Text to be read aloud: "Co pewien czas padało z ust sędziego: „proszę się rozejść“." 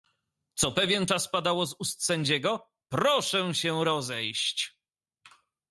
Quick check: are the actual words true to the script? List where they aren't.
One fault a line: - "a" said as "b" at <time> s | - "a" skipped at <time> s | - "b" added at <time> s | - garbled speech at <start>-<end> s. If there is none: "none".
none